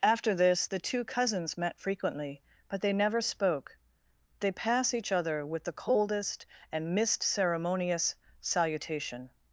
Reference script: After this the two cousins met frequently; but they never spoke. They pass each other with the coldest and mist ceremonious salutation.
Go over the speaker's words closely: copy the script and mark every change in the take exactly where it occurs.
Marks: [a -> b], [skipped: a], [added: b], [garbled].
After this the two cousins met frequently; but they never spoke. They pass each other with the coldest and mist ceremonious salutation.